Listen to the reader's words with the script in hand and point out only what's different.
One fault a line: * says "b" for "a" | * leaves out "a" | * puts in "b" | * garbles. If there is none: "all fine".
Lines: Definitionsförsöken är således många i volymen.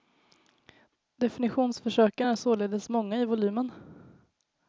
all fine